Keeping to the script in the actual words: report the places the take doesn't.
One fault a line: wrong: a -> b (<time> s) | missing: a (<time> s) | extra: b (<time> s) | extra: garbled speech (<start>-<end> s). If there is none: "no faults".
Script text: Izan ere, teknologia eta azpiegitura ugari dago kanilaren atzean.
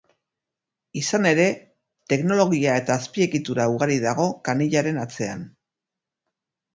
no faults